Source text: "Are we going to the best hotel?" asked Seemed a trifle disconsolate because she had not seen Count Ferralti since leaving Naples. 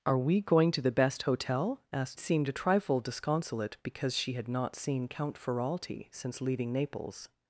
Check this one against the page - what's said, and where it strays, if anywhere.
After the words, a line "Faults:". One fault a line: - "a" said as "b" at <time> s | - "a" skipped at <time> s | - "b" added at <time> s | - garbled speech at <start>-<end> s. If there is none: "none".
"Are we going to the best hotel?" asked Seemed a trifle disconsolate because she had not seen Count Ferralti since leaving Naples.
Faults:
none